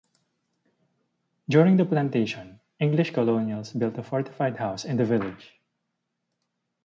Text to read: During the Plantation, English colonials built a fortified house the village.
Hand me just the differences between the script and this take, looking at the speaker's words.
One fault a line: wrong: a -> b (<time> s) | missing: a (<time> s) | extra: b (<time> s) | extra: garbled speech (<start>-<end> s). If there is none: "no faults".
extra: in (4.8 s)